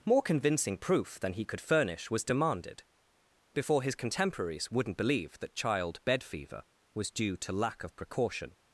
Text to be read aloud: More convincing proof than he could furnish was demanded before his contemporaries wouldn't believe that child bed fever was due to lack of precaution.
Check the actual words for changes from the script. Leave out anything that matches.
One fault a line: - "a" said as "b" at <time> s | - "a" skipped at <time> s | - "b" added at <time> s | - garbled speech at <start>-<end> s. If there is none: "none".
none